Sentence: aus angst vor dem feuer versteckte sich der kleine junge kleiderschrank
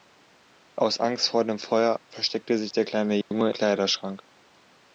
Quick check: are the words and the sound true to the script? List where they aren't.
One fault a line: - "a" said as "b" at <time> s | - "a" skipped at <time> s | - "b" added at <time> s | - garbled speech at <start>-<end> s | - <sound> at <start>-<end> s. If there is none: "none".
- dropout at 3.2-3.3 s